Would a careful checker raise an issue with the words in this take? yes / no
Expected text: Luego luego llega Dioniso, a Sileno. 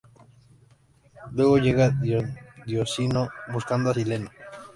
yes